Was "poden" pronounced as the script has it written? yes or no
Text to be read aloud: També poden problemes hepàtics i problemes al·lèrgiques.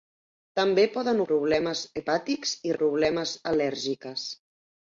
yes